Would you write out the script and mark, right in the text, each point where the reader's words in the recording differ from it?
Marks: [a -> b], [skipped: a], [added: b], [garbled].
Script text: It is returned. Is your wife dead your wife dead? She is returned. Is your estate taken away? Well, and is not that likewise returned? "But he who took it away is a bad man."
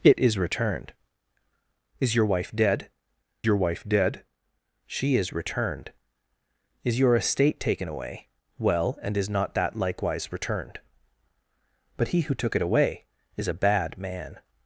It is returned. Is your wife dead your wife dead? She is returned. Is your estate taken away? Well, and is not that likewise returned? "But he who took it away is a bad man."